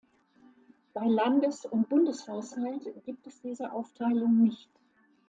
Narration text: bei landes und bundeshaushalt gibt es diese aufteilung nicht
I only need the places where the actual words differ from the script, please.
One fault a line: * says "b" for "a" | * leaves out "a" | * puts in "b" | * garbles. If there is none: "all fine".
all fine